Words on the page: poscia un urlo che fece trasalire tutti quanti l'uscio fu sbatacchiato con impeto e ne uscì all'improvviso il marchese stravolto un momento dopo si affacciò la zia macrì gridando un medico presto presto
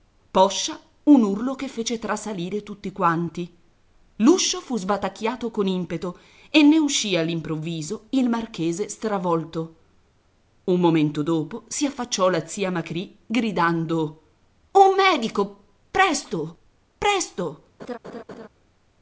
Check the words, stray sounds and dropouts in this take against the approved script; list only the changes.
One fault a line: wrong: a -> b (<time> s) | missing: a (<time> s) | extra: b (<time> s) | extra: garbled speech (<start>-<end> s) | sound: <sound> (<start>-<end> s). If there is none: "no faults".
sound: laugh (17.8-18.5 s)